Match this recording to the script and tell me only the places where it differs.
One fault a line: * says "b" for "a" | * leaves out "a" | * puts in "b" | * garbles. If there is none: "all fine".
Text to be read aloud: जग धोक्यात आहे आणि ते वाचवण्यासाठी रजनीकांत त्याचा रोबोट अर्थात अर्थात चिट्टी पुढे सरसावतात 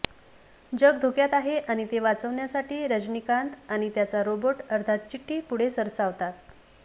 * puts in "आणि"
* leaves out "अर्थात"